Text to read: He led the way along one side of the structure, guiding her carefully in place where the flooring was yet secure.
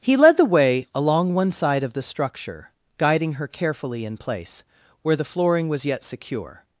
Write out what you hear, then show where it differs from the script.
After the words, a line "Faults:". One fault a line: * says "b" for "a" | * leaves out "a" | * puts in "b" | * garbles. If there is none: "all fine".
He led the way along one side of the structure, guiding her carefully in place where the flooring was yet secure.
Faults:
all fine